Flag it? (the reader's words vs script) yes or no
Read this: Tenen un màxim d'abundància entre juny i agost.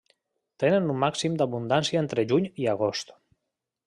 no